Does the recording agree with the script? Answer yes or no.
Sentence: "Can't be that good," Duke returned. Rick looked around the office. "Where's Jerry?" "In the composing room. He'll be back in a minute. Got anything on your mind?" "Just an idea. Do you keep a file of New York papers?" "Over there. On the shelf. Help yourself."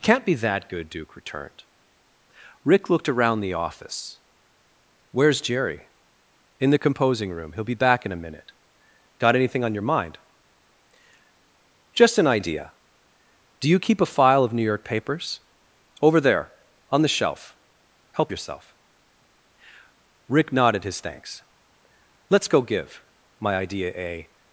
no